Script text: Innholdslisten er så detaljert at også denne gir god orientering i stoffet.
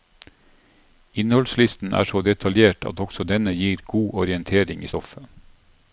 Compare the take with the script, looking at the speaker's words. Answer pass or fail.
pass